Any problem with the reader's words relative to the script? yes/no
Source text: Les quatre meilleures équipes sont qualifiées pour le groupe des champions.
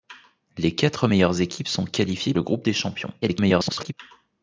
yes